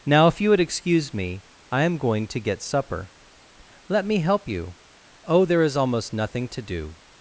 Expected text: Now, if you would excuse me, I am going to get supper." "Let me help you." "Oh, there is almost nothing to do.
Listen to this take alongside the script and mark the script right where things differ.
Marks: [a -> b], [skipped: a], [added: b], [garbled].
Now, if you would excuse me, I am going to get supper." "Let me help you." "Oh, there is almost nothing to do.